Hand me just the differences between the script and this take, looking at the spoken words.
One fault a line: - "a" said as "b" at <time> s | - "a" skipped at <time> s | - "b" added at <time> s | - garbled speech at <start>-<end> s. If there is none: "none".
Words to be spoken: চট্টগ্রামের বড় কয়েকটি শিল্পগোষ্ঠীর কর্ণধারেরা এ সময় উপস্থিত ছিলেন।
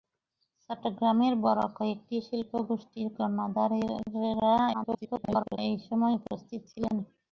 - garbled speech at 4.7-5.6 s